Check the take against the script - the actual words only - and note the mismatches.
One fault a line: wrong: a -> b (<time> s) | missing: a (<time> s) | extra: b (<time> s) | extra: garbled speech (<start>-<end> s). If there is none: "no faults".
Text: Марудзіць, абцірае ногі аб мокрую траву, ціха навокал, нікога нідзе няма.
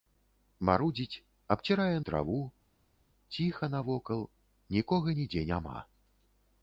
missing: ногі аб мокрую (2.0 s)